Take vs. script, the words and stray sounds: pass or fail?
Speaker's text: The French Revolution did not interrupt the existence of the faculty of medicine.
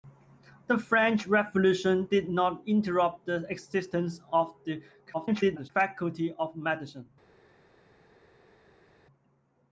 fail